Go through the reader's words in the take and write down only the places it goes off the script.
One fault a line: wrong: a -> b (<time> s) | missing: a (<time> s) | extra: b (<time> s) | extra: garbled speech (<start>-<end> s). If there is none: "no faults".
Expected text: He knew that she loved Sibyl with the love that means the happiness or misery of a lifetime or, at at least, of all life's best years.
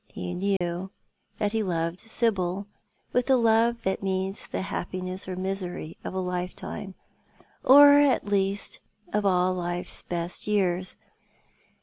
wrong: she -> he (1.5 s)
missing: at (8.2 s)